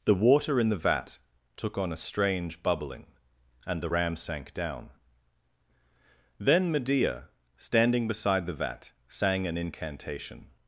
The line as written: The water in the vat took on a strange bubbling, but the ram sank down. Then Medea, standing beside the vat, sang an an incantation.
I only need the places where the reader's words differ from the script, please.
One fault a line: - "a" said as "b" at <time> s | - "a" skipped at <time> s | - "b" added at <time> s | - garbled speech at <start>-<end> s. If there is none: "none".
- "but" said as "and" at 3.7 s
- "an" skipped at 9.6 s